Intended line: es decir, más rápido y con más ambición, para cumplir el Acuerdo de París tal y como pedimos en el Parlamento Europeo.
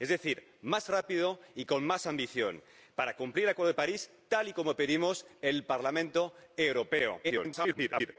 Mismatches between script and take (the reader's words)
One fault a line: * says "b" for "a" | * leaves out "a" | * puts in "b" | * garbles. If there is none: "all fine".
* garbles